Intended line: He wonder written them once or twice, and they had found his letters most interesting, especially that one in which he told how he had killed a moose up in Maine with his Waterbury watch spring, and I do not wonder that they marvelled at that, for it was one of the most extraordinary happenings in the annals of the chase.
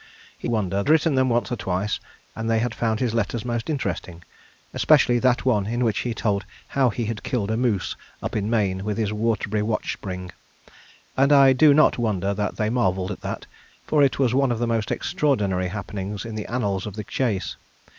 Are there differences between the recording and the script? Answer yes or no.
no